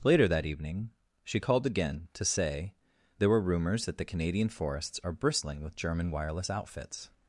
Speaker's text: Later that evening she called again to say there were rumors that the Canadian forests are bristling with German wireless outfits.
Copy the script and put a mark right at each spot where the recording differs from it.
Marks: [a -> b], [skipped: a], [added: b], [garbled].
Later that evening she called again to say there were rumors that the Canadian forests are bristling with German wireless outfits.